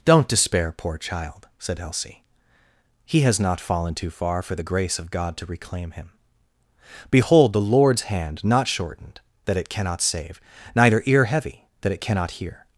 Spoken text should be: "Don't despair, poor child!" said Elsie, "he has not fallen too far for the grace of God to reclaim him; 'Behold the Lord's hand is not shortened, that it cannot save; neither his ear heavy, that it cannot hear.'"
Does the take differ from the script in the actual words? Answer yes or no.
yes